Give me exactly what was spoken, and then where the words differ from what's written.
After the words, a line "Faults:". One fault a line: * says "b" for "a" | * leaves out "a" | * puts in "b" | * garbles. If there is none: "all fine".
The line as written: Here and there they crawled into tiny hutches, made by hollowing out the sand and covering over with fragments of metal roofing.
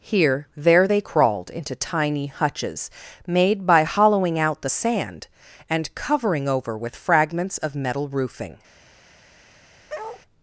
Here there they crawled into tiny hutches, made by hollowing out the sand and covering over with fragments of metal roofing.
Faults:
* leaves out "and"